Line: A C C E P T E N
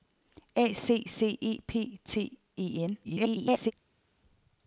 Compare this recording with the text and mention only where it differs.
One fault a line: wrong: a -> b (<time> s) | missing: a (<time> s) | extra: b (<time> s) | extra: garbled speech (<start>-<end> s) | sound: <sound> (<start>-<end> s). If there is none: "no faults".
extra: garbled speech (3.0-3.7 s)